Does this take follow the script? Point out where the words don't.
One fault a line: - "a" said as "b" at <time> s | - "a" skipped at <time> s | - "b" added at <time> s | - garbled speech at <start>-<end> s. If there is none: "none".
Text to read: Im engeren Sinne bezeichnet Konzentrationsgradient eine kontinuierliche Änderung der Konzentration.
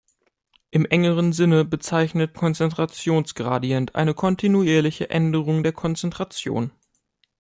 none